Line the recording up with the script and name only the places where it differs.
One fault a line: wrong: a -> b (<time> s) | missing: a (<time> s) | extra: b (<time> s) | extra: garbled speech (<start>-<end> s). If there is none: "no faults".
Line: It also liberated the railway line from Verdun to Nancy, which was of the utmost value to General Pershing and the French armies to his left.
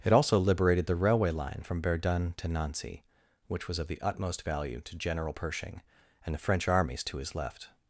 no faults